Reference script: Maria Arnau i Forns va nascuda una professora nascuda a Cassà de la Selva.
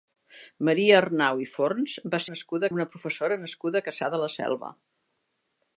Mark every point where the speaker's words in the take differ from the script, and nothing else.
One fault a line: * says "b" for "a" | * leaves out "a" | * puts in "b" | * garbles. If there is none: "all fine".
all fine